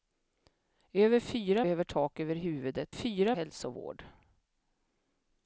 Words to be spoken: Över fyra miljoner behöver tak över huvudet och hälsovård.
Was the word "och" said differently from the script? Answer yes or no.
yes